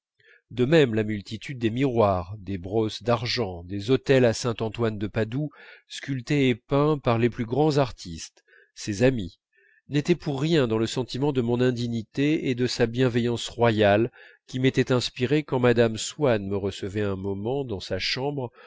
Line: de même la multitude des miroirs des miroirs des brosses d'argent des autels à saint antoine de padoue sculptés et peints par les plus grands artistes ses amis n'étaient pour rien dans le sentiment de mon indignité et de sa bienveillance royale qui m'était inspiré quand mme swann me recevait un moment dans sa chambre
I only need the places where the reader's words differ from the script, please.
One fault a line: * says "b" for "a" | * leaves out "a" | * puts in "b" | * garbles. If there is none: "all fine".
* leaves out "miroirs des"